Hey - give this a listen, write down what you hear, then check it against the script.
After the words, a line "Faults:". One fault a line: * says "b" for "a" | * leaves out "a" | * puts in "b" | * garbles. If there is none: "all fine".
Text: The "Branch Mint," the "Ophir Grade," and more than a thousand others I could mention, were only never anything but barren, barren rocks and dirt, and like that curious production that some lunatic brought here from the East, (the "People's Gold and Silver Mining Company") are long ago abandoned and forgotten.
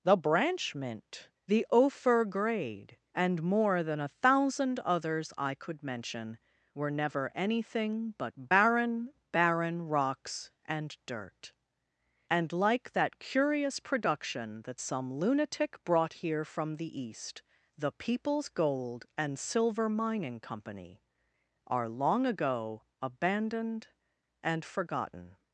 The "Branch Mint," the "Ophir Grade," and more than a thousand others I could mention, were never anything but barren, barren rocks and dirt, and like that curious production that some lunatic brought here from the East, (the "People's Gold and Silver Mining Company") are long ago abandoned and forgotten.
Faults:
* leaves out "only"